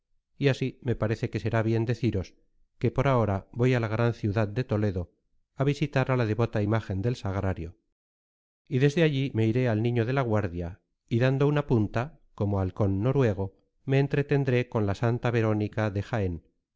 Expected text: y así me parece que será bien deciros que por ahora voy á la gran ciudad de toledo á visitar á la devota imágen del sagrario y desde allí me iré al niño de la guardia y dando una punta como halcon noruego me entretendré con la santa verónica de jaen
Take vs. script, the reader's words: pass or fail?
pass